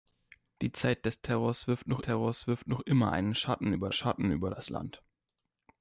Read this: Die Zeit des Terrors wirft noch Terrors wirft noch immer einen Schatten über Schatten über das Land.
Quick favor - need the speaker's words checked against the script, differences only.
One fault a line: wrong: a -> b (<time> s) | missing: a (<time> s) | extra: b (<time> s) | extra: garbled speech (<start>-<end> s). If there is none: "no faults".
no faults